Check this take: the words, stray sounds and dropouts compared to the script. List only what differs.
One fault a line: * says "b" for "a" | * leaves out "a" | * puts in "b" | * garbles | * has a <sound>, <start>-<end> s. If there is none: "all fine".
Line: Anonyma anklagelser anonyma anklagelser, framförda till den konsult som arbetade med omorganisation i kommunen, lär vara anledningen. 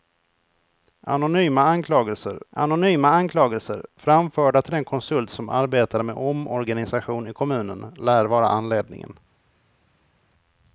all fine